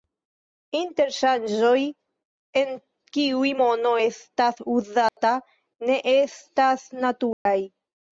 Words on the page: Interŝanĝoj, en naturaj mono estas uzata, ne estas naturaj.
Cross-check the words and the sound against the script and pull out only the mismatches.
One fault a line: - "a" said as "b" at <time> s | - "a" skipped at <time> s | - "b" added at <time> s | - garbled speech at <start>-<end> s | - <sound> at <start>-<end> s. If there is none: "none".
- "naturaj" said as "kiuj" at 3.2 s
- dropout at 5.1-5.2 s
- dropout at 7.3-7.5 s